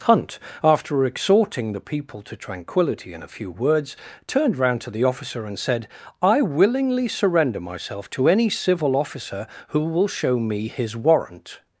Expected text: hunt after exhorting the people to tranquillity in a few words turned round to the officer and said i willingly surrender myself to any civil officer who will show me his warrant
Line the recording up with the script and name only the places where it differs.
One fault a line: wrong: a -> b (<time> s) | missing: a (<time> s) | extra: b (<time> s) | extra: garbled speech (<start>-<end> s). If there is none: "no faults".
no faults